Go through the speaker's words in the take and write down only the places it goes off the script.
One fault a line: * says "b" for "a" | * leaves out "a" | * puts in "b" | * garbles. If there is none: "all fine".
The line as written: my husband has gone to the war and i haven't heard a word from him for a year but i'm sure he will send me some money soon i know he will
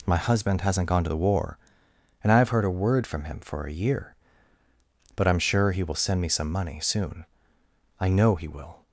* says "hasn't" for "has"
* says "have" for "haven't"